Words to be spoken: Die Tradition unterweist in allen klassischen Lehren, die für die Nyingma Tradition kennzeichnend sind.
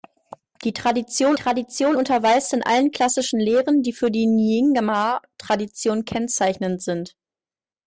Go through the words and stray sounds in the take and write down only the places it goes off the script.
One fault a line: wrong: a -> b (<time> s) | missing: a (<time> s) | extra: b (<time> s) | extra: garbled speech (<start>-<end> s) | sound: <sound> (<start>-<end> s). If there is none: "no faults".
extra: Tradition (1.3 s)